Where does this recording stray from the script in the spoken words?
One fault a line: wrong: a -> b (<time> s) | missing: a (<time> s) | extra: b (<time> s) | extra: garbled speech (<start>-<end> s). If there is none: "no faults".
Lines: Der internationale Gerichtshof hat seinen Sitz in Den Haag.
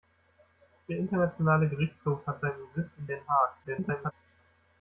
extra: garbled speech (3.6-4.1 s)